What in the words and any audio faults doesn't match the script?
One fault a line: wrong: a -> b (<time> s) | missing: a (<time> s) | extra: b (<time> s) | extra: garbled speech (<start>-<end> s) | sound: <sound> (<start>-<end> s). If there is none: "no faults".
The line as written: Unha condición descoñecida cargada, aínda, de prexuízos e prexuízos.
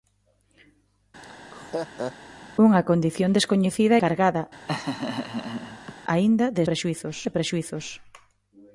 sound: laugh (1.2-2.1 s)
sound: laugh (4.7-5.9 s)